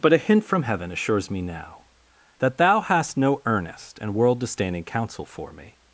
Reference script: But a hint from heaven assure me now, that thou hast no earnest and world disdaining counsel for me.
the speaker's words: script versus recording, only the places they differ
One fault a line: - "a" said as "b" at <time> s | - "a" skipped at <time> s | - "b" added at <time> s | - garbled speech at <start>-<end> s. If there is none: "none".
- "assure" said as "assures" at 0.9 s